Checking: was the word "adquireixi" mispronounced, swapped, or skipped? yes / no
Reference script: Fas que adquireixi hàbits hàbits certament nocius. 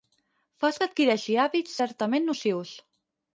no